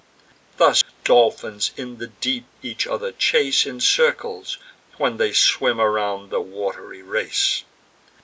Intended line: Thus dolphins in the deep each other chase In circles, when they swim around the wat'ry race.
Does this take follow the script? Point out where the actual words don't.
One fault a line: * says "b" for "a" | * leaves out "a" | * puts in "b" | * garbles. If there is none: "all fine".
all fine